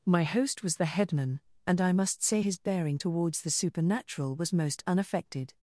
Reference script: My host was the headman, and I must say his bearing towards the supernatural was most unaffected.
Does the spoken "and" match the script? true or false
true